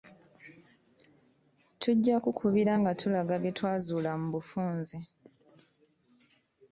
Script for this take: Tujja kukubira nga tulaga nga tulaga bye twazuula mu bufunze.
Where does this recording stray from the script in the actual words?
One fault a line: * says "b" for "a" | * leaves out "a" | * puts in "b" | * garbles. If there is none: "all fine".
* leaves out "nga tulaga"